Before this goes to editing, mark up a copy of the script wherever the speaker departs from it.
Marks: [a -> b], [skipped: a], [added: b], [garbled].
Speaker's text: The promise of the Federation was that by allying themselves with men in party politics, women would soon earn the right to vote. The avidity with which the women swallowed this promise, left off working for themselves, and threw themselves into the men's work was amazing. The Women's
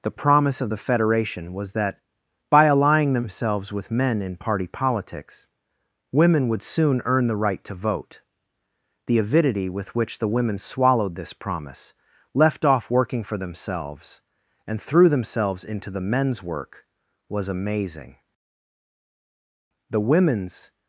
The promise of the Federation was that by allying themselves with men in party politics, women would soon earn the right to vote. The avidity with which the women swallowed this promise, left off working for themselves, and threw themselves into the men's work was amazing. The Women's